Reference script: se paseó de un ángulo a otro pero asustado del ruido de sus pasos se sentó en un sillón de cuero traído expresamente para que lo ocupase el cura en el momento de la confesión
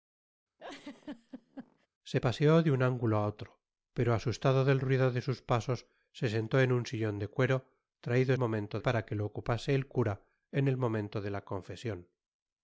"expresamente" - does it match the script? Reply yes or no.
no